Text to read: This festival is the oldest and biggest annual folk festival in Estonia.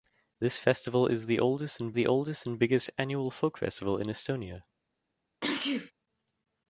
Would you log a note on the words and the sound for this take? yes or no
yes